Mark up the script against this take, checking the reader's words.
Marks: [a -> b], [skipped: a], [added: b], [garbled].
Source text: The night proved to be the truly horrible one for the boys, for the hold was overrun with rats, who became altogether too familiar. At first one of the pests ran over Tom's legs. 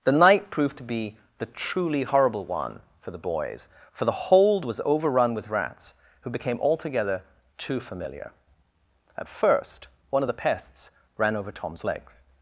The night proved to be the truly horrible one for the boys, for the hold was overrun with rats, who became altogether too familiar. At first one of the pests ran over Tom's legs.